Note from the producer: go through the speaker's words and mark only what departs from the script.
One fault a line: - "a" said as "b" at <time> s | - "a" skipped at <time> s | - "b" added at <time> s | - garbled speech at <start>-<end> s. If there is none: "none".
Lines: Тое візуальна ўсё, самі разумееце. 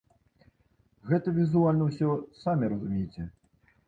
- "Тое" said as "Гэта" at 1.1 s